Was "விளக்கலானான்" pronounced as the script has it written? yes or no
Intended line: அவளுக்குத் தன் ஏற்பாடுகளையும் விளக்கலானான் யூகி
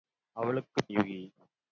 no